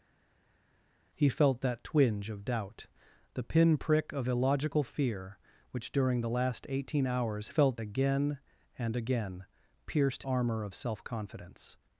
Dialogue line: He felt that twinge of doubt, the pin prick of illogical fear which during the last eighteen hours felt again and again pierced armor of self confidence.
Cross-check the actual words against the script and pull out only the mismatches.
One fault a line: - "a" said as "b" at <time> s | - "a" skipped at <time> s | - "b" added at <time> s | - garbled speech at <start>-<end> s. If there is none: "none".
none